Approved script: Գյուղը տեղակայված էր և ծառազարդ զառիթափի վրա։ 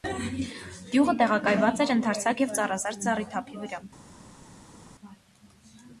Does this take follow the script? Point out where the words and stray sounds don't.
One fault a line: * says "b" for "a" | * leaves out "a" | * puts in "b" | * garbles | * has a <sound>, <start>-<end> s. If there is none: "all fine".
* puts in "ընդարձակ"